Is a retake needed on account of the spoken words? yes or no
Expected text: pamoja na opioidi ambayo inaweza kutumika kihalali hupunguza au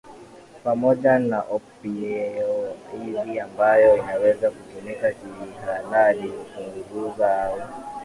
no